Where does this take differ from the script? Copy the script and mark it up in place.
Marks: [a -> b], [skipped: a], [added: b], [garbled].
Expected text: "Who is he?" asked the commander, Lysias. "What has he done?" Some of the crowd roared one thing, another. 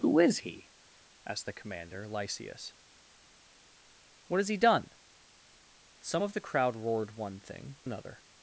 "Who is he?" asked the commander, Lysias. "What has he done?" Some of the crowd roared one thing, another.